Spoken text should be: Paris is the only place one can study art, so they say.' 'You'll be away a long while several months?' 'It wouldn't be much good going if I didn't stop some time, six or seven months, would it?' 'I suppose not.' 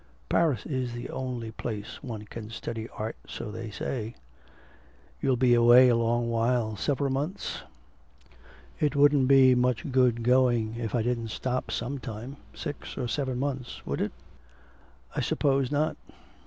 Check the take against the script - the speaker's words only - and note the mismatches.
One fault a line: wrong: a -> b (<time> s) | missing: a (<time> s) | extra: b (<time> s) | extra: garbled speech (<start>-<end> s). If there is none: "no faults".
no faults